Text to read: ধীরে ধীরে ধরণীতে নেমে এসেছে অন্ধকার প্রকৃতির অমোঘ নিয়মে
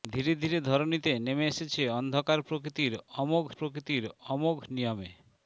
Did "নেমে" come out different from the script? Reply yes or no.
no